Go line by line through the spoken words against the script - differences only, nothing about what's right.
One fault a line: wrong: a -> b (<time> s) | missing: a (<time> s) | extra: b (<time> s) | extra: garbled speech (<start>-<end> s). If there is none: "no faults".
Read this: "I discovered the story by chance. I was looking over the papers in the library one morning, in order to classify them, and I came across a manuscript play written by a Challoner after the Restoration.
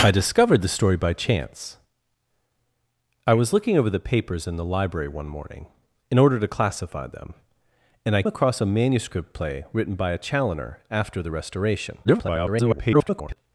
missing: came (8.2 s)
extra: garbled speech (12.0-13.4 s)